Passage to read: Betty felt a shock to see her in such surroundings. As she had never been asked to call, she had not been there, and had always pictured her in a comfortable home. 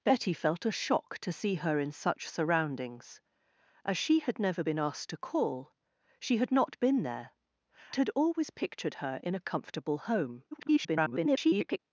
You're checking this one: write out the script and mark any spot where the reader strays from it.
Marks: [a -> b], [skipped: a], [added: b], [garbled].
Betty felt a shock to see her in such surroundings. As she had never been asked to call, she had not been there, [skipped: and] had always pictured her in a comfortable home. [garbled]